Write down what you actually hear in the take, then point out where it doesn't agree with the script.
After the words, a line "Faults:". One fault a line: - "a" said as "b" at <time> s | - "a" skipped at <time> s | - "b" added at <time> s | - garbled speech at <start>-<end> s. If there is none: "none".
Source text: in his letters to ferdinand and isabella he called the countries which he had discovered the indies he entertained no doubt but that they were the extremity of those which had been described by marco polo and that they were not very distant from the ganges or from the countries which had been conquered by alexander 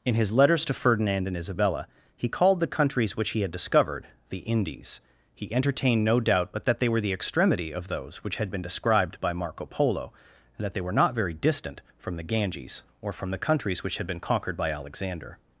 in his letters to ferdinand and isabella he called the countries which he had discovered the indies he entertained no doubt but that they were the extremity of those which had been described by marco polo and that they were not very distant from the ganges or from the countries which had been conquered by alexander
Faults:
none